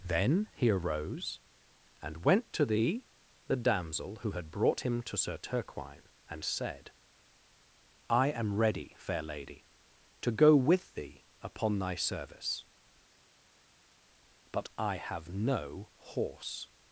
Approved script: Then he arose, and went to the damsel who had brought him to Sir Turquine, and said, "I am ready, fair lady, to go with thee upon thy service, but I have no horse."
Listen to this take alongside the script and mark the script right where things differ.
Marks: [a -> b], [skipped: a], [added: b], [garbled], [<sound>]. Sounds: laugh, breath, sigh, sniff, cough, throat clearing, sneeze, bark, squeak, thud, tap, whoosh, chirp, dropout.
Then he arose, and went to the [added: the] damsel who had brought him to Sir Turquine, and said, "I am ready, fair lady, to go with thee upon thy service, but I have no horse."